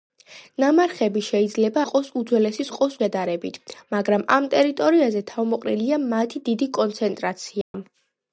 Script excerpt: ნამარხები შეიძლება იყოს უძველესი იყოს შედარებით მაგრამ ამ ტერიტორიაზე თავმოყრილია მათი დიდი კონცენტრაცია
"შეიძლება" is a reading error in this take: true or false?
false